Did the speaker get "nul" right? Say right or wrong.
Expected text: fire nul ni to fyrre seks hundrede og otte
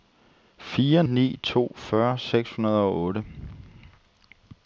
wrong